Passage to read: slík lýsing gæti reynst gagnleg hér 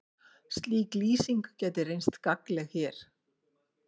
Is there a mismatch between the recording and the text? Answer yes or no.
no